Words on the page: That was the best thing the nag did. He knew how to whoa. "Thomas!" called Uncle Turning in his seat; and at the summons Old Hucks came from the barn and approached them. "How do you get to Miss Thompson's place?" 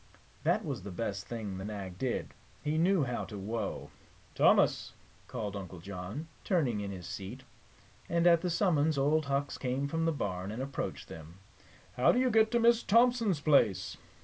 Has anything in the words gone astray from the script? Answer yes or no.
yes